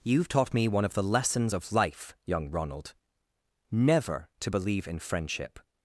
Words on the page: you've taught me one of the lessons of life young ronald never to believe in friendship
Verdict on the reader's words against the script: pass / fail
pass